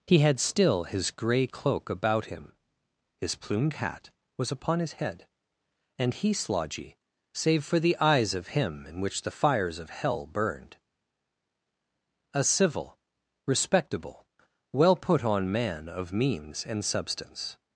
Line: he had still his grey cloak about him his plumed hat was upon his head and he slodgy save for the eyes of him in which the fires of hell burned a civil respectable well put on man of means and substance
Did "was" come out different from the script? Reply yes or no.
no